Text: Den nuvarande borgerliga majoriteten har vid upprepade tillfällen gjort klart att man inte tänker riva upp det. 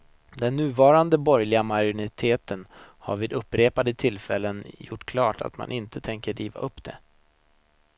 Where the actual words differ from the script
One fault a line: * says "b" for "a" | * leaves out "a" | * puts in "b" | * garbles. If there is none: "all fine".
all fine